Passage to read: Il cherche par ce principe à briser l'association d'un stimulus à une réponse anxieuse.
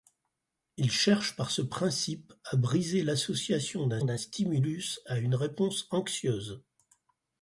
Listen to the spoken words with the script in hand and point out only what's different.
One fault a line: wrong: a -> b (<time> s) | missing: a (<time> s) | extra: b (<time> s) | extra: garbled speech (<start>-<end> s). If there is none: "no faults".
extra: d'un (4.0 s)